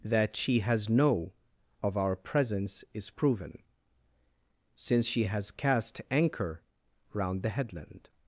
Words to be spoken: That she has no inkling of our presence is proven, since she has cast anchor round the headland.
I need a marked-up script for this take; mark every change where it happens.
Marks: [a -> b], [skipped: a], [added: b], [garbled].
That she has no [skipped: inkling] of our presence is proven, since she has cast anchor round the headland.